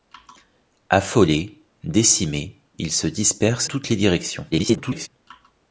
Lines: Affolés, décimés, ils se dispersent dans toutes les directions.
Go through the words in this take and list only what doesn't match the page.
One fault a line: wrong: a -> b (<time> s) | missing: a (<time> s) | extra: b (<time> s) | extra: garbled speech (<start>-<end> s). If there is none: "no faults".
missing: dans (3.7 s)
extra: garbled speech (4.5-5.1 s)